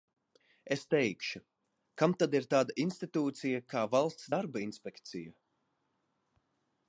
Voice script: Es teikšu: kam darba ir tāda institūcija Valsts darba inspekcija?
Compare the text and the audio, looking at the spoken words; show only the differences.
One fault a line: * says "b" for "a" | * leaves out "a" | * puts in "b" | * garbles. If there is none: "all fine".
* says "tad" for "darba"
* puts in "kā"